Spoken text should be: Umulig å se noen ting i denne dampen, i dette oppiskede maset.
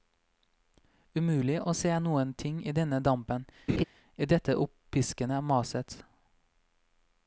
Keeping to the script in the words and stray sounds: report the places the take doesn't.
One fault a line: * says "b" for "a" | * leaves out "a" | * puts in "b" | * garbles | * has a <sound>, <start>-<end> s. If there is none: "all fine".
* has a laugh, 3.7-3.8 s